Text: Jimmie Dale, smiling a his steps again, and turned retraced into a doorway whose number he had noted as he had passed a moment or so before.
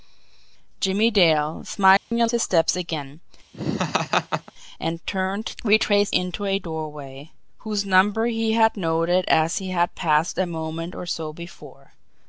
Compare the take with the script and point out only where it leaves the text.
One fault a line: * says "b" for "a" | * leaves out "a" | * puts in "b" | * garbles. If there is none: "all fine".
all fine